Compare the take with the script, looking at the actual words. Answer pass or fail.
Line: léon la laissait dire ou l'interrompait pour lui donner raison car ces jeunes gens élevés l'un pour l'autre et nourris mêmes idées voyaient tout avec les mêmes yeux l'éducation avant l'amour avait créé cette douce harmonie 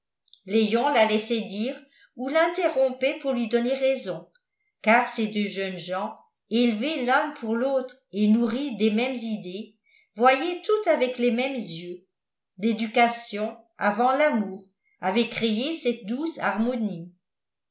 fail